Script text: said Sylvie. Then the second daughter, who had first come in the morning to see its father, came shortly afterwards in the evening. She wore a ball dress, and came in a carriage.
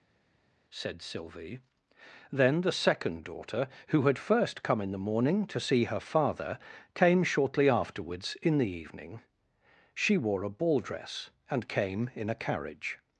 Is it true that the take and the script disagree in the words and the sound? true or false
true